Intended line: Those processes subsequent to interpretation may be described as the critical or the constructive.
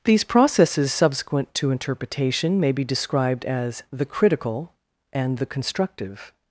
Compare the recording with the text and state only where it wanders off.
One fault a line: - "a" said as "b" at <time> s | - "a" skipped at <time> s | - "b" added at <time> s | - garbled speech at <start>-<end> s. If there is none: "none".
- "Those" said as "These" at 0.0 s
- "or" said as "and" at 5.1 s